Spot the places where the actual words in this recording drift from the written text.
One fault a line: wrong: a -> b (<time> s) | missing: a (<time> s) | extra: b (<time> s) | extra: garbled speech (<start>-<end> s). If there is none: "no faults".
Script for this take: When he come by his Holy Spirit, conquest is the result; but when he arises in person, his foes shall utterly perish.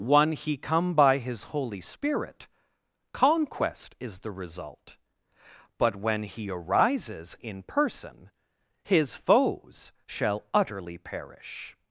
no faults